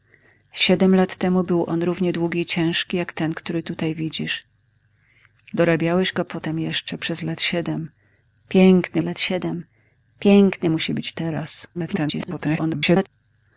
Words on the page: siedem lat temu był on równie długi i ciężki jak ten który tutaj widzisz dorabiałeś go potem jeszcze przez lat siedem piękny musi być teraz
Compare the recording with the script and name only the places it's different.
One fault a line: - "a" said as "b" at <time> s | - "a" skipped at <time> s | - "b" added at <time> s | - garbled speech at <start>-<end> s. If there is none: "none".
- "lat siedem piękny" added at 9.0 s
- garbled speech at 11.7-13.1 s